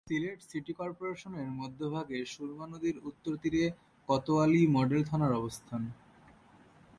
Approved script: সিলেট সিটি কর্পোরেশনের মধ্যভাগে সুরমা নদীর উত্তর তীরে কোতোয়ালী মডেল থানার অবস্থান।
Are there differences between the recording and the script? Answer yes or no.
no